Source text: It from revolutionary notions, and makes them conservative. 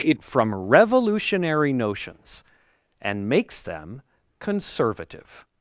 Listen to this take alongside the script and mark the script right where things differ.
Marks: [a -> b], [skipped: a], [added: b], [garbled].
It from revolutionary notions, and makes them conservative.